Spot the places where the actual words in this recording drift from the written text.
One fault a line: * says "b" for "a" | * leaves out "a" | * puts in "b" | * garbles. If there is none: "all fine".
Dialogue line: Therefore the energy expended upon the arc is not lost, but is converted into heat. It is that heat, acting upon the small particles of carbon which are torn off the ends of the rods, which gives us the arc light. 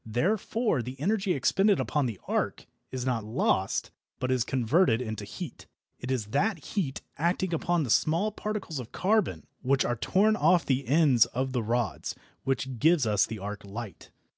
all fine